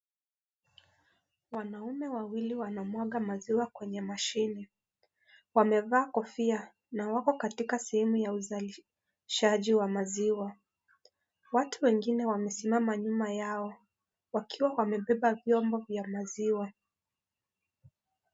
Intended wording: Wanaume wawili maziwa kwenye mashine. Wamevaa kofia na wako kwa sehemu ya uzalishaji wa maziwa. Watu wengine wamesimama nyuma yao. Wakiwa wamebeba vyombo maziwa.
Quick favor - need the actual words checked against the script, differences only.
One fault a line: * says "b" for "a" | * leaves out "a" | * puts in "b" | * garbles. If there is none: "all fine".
* puts in "wanamwaga"
* says "katika" for "kwa"
* puts in "vya"